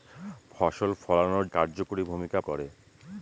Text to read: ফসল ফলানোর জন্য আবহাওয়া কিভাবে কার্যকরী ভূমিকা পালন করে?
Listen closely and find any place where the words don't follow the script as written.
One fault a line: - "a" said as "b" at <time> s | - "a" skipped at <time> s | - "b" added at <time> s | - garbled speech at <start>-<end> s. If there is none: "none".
- "জন্য আবহাওয়া কিভাবে" skipped at 1.4 s
- "পালন" skipped at 2.4 s